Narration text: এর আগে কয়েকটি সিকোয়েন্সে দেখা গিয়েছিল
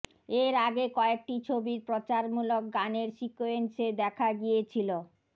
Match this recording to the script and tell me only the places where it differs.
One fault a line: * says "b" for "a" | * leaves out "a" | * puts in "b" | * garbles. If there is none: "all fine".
* puts in "ছবির প্রচারমূলক গানের"